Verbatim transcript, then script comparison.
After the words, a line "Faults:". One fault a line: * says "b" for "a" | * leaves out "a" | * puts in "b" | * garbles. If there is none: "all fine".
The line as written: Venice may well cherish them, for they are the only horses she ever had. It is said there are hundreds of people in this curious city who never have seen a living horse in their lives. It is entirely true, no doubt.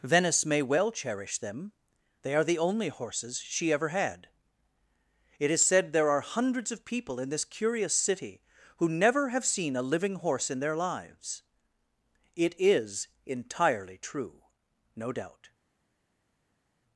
Venice may well cherish them, they are the only horses she ever had. It is said there are hundreds of people in this curious city who never have seen a living horse in their lives. It is entirely true, no doubt.
Faults:
* leaves out "for"